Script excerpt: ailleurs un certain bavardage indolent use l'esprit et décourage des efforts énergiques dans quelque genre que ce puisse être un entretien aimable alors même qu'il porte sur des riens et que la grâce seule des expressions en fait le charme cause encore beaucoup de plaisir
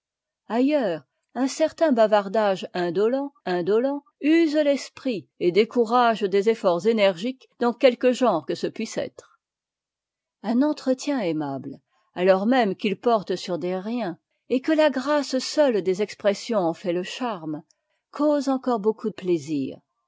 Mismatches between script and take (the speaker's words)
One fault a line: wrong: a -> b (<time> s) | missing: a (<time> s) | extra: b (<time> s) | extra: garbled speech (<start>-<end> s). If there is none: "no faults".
extra: indolent (3.4 s)
missing: de (19.1 s)